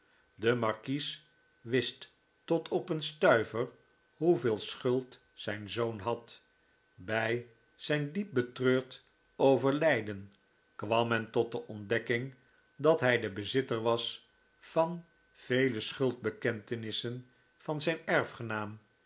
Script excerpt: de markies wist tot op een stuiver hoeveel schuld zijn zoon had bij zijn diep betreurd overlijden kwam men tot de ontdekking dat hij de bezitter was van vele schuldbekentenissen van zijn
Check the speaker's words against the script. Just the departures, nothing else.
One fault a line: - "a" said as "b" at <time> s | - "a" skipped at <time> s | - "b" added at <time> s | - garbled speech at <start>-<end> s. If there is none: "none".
none